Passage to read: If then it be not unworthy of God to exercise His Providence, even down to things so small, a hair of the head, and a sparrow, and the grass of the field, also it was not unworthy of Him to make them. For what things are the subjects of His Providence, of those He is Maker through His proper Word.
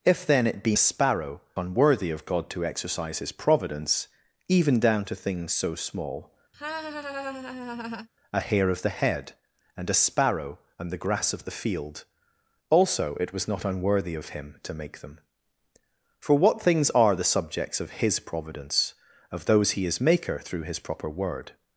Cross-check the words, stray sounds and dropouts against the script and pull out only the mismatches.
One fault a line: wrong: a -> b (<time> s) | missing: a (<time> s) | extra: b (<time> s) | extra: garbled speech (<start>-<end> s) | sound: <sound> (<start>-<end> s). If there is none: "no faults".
wrong: not -> sparrow (0.8 s)
sound: laugh (6.5-8.1 s)